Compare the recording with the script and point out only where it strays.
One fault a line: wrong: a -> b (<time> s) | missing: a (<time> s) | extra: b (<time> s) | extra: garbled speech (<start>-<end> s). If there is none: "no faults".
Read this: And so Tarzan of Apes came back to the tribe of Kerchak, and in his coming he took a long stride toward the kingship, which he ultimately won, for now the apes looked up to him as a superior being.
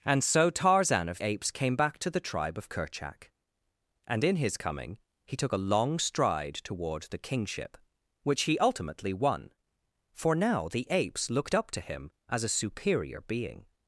no faults